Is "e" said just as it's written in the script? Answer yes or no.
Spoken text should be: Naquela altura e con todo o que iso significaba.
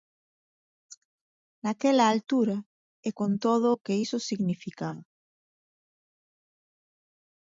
yes